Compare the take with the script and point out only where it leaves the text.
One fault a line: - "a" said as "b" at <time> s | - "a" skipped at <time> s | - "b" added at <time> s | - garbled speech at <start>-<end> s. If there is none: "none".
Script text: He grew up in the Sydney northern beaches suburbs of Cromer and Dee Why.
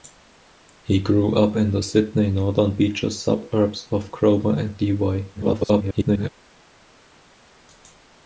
- garbled speech at 5.3-6.3 s